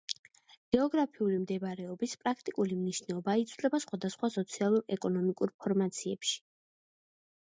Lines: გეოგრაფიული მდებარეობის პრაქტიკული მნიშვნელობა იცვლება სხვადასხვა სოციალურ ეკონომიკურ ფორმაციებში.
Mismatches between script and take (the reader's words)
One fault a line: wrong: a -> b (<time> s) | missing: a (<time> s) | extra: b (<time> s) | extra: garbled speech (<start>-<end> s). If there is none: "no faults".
no faults